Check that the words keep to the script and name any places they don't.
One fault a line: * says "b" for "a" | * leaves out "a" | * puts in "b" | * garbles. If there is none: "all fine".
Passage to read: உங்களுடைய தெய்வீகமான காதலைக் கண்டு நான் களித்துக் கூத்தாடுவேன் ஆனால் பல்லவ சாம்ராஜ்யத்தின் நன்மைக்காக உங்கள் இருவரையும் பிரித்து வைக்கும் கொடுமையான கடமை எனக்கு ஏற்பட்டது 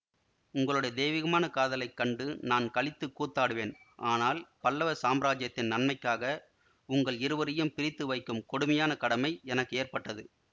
all fine